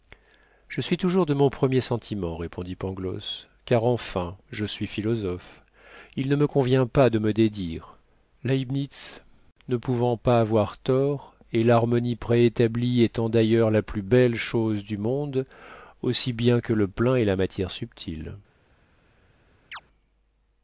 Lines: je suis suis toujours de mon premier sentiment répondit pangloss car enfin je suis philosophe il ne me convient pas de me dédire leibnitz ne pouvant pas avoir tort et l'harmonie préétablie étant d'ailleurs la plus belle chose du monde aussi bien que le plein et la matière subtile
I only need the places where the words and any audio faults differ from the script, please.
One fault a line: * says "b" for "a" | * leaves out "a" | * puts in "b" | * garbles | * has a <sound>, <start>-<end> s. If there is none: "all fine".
* leaves out "suis"
* has a chirp, 19.7-19.8 s